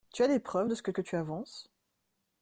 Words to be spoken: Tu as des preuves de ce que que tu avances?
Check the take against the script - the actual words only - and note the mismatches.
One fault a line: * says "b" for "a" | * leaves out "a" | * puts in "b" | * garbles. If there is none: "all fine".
all fine